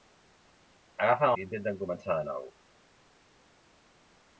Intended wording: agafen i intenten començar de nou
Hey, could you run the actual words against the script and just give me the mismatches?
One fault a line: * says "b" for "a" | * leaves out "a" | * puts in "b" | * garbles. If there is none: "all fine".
all fine